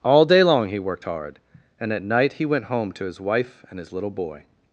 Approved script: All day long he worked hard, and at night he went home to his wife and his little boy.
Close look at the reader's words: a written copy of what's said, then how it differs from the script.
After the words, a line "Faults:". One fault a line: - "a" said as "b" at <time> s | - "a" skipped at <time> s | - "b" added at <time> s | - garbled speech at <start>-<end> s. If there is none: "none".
All day long he worked hard, and at night he went home to his wife and his little boy.
Faults:
none